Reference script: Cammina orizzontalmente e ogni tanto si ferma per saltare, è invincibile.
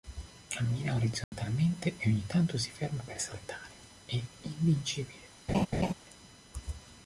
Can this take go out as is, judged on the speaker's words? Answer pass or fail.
pass